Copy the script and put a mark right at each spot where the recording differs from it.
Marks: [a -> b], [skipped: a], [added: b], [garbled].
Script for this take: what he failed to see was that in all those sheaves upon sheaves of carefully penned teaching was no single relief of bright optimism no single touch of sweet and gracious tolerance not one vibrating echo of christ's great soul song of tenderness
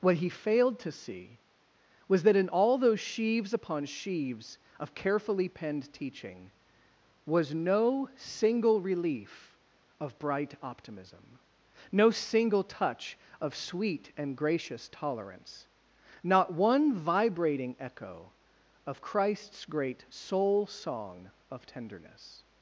what he failed to see was that in all those sheaves upon sheaves of carefully penned teaching was no single relief of bright optimism no single touch of sweet and gracious tolerance not one vibrating echo of christ's great soul song of tenderness